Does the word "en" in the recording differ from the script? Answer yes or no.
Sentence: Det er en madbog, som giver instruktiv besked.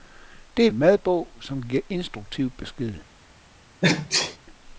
no